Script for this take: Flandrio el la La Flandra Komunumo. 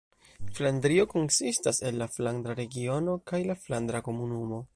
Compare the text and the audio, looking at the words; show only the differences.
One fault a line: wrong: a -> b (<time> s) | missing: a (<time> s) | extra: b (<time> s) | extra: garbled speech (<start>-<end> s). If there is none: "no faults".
extra: konsistas (1.1 s)
extra: Flandra Regiono kaj (2.1 s)